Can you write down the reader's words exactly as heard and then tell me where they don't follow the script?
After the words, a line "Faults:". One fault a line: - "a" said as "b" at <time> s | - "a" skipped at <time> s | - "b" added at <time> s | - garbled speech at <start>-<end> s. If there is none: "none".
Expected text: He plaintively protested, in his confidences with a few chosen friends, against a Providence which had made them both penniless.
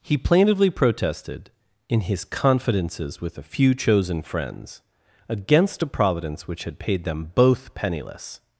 He plaintively protested, in his confidences with a few chosen friends, against a Providence which had paid them both penniless.
Faults:
- "made" said as "paid" at 6.8 s